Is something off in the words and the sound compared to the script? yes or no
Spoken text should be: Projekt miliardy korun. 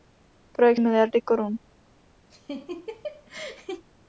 yes